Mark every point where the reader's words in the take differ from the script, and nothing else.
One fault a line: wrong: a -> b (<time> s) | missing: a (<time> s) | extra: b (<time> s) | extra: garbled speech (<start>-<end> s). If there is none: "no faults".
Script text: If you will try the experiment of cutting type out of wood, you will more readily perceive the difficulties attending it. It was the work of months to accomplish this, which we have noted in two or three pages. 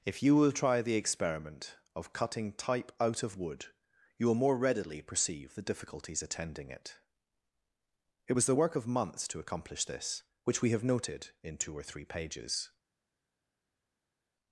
no faults